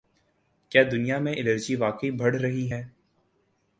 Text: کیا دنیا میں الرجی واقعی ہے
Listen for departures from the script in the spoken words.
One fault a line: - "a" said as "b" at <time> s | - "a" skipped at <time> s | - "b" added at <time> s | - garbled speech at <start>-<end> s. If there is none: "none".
- "بڑھ رہی" added at 2.1 s